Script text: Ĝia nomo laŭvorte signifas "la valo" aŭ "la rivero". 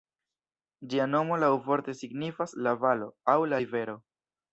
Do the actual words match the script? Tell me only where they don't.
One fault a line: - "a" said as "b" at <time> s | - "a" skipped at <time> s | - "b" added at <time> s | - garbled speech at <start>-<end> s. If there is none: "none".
none